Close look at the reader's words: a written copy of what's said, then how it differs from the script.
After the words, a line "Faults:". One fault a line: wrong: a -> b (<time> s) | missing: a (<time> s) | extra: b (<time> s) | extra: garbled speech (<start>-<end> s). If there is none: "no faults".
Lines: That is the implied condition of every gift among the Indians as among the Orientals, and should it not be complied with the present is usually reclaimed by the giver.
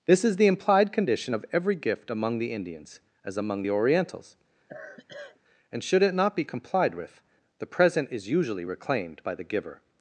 This is the implied condition of every gift among the Indians as among the Orientals, and should it not be complied with the present is usually reclaimed by the giver.
Faults:
wrong: That -> This (0.1 s)